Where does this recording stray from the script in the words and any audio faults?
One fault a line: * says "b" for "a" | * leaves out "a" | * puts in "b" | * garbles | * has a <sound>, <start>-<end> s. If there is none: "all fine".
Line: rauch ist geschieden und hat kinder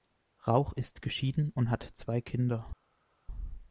* puts in "zwei"